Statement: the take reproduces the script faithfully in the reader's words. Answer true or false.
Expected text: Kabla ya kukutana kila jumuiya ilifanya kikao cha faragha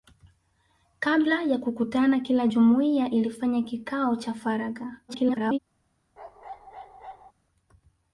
false